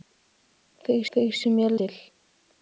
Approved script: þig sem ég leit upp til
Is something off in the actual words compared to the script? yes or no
yes